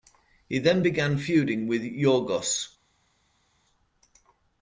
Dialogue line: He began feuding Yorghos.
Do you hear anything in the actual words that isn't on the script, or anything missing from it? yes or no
yes